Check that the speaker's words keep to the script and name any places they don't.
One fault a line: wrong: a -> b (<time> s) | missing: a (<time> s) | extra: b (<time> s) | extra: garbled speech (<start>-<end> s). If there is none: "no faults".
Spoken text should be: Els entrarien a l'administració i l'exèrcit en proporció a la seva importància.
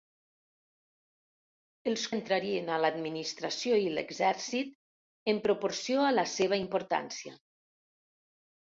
no faults